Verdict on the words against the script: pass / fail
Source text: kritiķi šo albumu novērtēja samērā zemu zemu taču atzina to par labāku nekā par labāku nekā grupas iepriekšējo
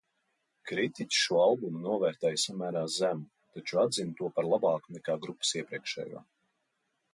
fail